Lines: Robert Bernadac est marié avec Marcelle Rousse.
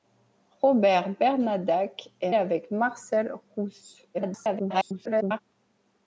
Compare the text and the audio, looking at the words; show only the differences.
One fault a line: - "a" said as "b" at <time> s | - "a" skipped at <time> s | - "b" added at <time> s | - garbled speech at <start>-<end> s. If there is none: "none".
- "marié" skipped at 2.3 s
- garbled speech at 4.1-5.4 s